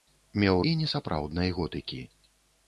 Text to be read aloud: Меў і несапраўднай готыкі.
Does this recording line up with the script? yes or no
yes